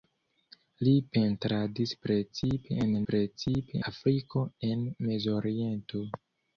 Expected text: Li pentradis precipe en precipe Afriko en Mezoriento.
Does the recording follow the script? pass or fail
pass